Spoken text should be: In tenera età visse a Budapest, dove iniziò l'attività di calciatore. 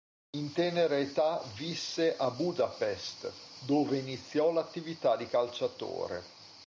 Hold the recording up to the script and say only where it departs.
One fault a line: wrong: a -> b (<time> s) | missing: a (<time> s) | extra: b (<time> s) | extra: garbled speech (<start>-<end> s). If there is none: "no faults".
no faults